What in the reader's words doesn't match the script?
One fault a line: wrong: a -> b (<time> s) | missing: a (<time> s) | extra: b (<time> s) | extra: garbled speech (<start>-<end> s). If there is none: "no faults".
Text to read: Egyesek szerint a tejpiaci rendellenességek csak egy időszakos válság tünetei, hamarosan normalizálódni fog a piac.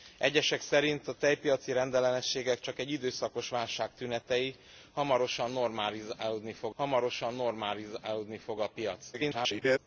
extra: hamarosan normalizálódni fog (6.8 s)
extra: garbled speech (9.1-9.8 s)